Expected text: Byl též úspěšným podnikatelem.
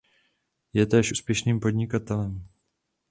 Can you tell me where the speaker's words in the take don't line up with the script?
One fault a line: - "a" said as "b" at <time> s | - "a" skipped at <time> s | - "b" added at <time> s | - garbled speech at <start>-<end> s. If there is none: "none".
- "Byl" said as "Je" at 0.7 s